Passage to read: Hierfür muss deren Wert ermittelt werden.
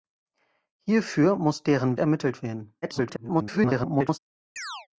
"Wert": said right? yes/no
no